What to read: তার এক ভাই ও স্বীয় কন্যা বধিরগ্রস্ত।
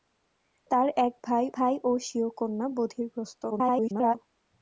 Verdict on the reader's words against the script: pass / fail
fail